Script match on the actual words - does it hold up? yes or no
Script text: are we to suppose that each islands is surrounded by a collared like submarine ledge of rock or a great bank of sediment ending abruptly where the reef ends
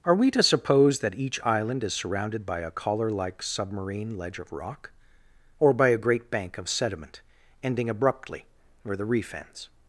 no